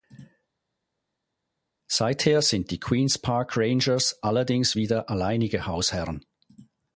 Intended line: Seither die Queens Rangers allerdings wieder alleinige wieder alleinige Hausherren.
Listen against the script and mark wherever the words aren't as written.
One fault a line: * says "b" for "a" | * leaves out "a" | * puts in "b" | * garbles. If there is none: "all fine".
* puts in "sind"
* puts in "Park"
* leaves out "wieder alleinige"